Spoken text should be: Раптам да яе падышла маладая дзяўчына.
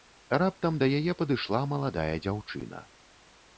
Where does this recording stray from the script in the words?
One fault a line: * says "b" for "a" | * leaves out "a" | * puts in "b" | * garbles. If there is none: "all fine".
all fine